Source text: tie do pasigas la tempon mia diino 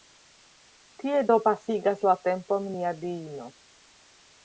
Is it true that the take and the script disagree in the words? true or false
false